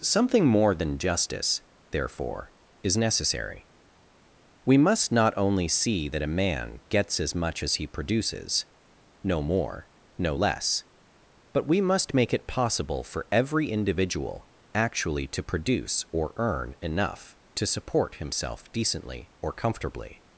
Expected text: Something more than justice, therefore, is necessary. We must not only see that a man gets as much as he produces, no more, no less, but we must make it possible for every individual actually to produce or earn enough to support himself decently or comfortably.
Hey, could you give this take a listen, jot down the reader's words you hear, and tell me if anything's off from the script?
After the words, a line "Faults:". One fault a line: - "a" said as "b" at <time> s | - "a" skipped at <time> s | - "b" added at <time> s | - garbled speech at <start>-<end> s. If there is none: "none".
Something more than justice, therefore, is necessary. We must not only see that a man gets as much as he produces, no more, no less, but we must make it possible for every individual actually to produce or earn enough to support himself decently or comfortably.
Faults:
none